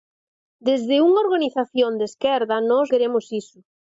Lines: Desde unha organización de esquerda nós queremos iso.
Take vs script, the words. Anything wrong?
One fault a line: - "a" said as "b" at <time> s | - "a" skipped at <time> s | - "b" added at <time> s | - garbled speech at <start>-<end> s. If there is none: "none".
none